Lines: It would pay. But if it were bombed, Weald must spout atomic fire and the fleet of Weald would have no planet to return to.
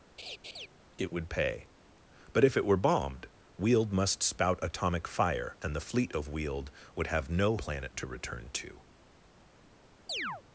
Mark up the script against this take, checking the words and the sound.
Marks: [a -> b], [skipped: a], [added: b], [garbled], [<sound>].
[laugh] It would pay. But if it were bombed, Weald must spout atomic fire and the fleet of Weald would have no planet to return to. [chirp]